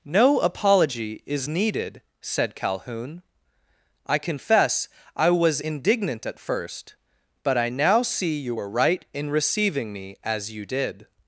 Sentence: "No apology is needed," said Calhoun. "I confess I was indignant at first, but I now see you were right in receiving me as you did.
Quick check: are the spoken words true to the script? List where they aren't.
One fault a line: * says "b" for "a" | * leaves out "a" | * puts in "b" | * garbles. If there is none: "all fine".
all fine